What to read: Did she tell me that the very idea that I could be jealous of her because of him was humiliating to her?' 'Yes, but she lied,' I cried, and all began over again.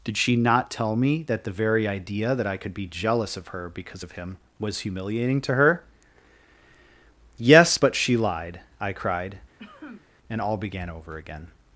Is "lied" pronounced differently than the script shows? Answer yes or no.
no